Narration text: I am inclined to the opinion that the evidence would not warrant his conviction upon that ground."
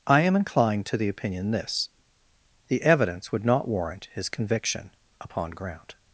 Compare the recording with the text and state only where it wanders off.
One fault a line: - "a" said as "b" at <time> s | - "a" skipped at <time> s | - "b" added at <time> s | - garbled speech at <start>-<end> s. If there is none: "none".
- "that" said as "this" at 1.5 s
- "that" skipped at 5.5 s